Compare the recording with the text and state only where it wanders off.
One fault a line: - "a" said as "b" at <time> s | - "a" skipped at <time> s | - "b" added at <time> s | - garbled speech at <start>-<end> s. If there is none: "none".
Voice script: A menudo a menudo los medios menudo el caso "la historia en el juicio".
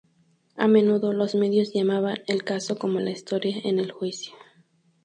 - "a menudo" skipped at 1.1 s
- "menudo" said as "llamaban" at 1.7 s
- "como" added at 2.8 s